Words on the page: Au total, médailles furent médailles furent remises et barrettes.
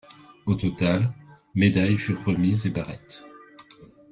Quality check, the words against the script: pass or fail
fail